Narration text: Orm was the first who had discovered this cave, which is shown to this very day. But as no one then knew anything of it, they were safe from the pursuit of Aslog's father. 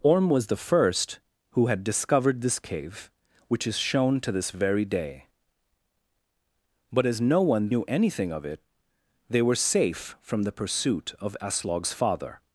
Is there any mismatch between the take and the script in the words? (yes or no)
yes